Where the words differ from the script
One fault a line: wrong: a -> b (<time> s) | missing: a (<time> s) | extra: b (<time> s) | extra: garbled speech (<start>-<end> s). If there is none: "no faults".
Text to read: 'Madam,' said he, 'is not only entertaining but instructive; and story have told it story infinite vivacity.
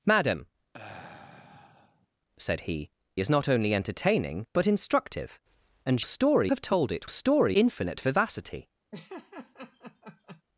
no faults